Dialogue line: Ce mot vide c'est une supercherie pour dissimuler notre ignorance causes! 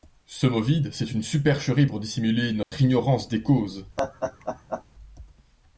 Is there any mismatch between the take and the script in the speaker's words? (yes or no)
yes